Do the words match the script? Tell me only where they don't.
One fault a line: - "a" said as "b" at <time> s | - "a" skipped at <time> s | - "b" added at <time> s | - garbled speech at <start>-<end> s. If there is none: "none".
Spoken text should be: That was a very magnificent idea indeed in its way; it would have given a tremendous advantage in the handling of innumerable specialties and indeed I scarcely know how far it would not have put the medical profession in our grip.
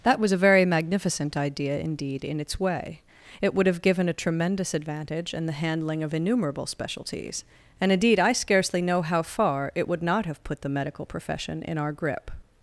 none